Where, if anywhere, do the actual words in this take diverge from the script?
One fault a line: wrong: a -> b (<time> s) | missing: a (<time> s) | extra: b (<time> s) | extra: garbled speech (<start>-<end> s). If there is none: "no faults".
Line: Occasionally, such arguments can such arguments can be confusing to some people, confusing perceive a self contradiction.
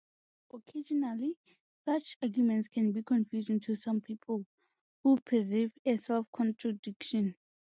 missing: such arguments can (2.9 s)
wrong: confusing -> who (5.0 s)